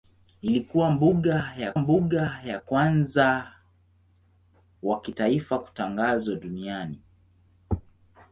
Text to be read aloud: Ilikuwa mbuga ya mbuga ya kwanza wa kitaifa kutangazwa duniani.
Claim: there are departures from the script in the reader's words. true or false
false